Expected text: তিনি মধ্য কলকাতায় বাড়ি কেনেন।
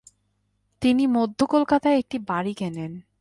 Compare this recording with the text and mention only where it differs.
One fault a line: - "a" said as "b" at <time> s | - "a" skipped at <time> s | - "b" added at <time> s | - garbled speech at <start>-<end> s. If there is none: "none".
- "একটি" added at 2.0 s